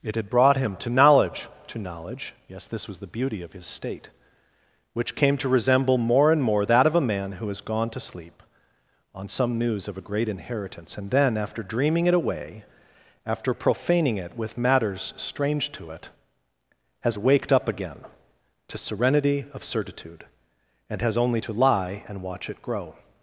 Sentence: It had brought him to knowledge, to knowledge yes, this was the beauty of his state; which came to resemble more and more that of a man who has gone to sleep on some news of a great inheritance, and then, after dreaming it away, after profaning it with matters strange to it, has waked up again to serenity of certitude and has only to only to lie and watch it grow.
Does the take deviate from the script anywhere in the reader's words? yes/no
yes